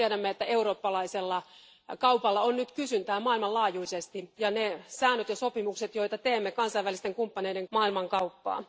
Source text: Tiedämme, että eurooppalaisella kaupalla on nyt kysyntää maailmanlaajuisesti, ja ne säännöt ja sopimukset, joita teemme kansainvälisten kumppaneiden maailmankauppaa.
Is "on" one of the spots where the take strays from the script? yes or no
no